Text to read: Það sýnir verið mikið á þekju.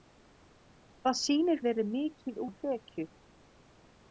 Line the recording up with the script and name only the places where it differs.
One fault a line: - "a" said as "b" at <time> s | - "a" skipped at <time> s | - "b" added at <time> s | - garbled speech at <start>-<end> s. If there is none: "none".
none